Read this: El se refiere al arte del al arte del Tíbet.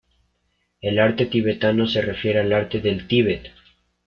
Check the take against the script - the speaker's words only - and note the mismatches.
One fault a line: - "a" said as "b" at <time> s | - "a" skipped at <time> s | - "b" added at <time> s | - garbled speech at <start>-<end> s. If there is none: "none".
- "arte tibetano" added at 1.0 s
- "al arte del" skipped at 3.0 s